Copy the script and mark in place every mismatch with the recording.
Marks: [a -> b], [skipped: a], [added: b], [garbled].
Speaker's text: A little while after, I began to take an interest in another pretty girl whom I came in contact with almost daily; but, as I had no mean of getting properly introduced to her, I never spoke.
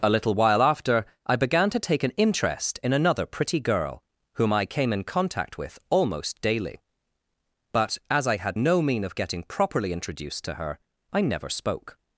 A little while after, I began to take an interest in another pretty girl whom I came in contact with almost daily; but, as I had no mean of getting properly introduced to her, I never spoke.